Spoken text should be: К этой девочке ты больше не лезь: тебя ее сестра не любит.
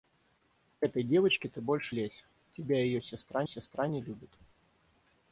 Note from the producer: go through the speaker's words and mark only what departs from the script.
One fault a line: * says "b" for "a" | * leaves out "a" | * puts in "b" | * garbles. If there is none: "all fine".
* leaves out "не"
* puts in "сестра"